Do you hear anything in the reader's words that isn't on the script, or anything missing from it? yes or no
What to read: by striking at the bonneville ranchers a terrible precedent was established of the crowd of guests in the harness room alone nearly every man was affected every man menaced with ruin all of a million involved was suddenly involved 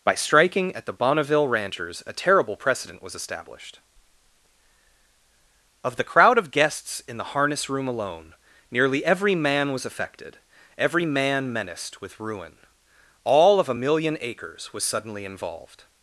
yes